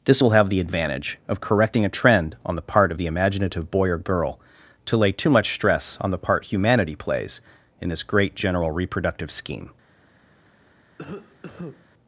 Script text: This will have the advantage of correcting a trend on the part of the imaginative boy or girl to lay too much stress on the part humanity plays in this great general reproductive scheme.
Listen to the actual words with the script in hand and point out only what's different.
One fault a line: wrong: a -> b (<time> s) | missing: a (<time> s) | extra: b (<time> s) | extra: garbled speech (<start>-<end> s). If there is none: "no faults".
no faults